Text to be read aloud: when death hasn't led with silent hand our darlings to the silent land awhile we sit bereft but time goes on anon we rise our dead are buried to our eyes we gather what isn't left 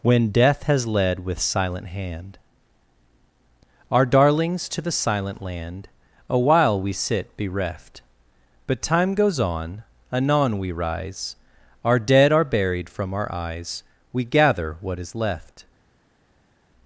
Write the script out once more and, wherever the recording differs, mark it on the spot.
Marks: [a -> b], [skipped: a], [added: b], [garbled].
when death [hasn't -> has] led with silent hand our darlings to the silent land awhile we sit bereft but time goes on anon we rise our dead are buried [to -> from] our eyes we gather what [isn't -> is] left